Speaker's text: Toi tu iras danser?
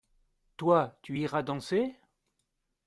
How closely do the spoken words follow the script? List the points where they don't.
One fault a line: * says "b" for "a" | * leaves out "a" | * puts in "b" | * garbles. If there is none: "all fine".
all fine